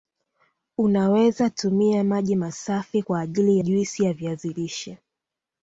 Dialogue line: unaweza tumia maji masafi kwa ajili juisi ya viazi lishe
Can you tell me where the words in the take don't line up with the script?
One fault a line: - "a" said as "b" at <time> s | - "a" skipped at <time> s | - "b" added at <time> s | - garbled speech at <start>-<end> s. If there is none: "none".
none